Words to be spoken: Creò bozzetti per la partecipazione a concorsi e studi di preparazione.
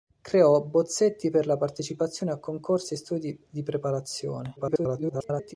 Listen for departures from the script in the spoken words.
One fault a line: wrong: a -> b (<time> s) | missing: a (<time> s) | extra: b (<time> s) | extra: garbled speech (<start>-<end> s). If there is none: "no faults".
extra: garbled speech (4.6-5.5 s)